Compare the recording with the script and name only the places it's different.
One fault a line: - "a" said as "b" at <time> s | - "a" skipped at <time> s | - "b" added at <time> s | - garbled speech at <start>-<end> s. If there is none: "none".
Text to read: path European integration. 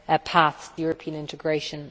none